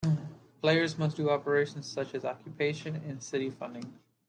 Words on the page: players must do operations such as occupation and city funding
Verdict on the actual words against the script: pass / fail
pass